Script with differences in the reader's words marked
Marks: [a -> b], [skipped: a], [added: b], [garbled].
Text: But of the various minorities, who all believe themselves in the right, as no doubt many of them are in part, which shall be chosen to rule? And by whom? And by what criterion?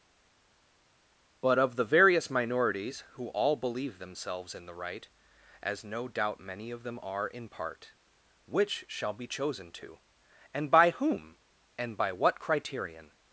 But of the various minorities, who all believe themselves in the right, as no doubt many of them are in part, which shall be chosen to [skipped: rule?] And by whom? And by what criterion?